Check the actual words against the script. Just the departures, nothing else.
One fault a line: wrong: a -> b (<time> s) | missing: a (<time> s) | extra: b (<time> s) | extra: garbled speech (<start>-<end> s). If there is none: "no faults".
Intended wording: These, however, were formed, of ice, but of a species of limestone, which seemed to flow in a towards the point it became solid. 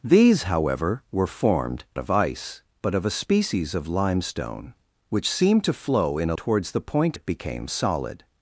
no faults